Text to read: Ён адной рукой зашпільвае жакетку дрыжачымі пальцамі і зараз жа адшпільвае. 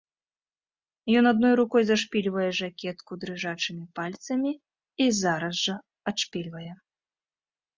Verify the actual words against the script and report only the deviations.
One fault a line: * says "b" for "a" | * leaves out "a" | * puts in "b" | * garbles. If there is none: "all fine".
all fine